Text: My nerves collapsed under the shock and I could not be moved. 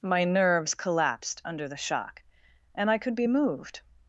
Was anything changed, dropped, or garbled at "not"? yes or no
yes